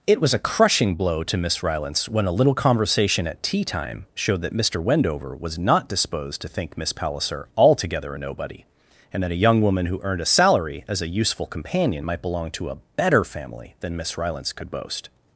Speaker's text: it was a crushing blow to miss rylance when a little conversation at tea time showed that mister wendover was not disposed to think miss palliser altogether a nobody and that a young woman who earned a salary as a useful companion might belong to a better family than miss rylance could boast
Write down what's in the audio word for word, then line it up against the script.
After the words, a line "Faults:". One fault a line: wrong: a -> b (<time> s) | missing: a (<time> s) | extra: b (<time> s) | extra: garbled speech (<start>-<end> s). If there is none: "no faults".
it was a crushing blow to miss rylance when a little conversation at tea time showed that mister wendover was not disposed to think miss palliser altogether a nobody and that a young woman who earned a salary as a useful companion might belong to a better family than miss rylance could boast
Faults:
no faults